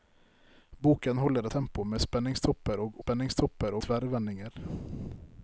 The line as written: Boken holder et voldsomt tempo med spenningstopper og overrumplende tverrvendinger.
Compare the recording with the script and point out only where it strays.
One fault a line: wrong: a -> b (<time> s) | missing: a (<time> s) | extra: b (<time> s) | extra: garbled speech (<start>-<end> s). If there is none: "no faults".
missing: et voldsomt (1.5 s)
wrong: overrumplende -> spenningstopper (3.0 s)